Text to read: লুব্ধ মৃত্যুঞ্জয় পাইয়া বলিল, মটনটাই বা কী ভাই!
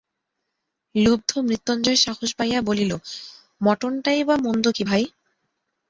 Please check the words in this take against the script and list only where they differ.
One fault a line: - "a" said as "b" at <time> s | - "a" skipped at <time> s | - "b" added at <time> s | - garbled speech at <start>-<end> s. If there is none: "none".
- "সাহস" added at 2.0 s
- "মন্দ" added at 4.4 s